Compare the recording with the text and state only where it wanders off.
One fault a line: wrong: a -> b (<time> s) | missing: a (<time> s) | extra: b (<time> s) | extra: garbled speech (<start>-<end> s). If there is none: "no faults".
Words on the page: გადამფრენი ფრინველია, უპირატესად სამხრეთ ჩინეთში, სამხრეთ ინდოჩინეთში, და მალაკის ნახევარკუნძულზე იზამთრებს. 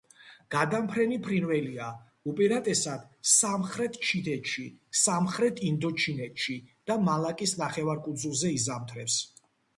no faults